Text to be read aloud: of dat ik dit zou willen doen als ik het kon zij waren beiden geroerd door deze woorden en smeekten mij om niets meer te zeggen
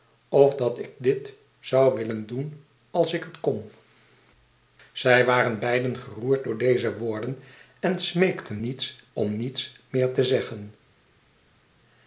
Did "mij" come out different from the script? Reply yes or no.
yes